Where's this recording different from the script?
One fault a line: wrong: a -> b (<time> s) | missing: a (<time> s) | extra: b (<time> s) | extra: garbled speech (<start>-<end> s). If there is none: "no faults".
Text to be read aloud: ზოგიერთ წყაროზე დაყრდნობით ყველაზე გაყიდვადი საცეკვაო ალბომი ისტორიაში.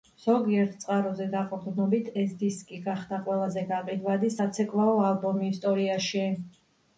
extra: ეს დისკი გახდა (2.2 s)